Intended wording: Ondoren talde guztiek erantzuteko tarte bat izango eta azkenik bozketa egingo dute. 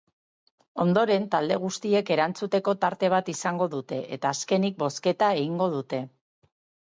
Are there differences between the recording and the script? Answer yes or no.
yes